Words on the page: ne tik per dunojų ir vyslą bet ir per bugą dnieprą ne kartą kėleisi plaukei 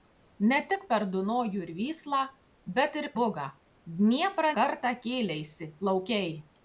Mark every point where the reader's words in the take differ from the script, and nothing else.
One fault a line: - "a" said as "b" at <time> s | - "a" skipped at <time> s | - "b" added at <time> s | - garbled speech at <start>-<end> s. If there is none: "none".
- "per" skipped at 3.1 s
- "ne" skipped at 4.5 s